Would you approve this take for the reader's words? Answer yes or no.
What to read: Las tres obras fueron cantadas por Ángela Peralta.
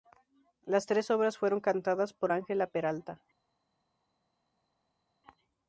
yes